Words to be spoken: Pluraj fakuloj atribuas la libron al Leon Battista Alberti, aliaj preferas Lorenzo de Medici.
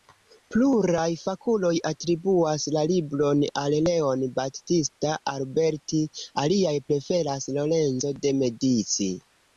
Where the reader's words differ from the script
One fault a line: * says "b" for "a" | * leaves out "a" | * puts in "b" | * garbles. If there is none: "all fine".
all fine